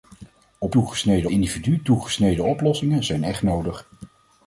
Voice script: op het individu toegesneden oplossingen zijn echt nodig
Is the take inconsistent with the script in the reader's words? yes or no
yes